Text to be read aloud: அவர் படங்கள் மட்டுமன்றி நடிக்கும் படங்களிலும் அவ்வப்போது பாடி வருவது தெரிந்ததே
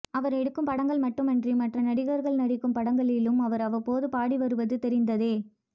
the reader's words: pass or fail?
fail